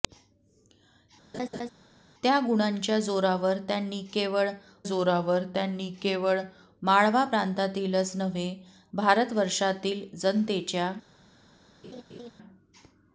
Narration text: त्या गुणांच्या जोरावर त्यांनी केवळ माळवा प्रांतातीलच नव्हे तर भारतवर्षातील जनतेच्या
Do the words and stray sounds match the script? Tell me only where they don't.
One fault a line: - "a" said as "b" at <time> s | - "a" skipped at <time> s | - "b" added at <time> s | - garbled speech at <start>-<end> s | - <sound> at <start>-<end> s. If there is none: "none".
- laugh at 1.3-1.7 s
- "जोरावर त्यांनी केवळ" added at 4.8 s
- "तर" skipped at 8.5 s
- laugh at 11.8-12.3 s